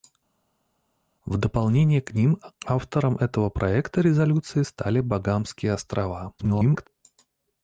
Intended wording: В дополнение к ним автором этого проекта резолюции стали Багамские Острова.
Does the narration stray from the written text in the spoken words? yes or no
yes